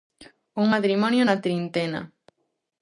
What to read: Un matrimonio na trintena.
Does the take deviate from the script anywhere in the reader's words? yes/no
no